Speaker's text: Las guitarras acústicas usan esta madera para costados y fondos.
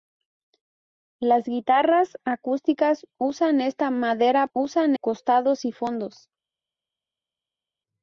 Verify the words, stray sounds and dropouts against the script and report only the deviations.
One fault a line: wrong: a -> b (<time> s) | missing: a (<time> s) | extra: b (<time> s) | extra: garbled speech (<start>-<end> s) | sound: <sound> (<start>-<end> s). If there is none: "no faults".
wrong: para -> usan (4.5 s)